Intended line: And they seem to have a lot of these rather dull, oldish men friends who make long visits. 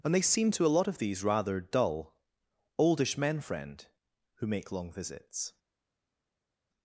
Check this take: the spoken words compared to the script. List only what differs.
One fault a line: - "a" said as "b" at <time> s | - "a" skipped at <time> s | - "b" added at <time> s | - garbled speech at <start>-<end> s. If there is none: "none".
- "have" skipped at 0.7 s
- "friends" said as "friend" at 3.4 s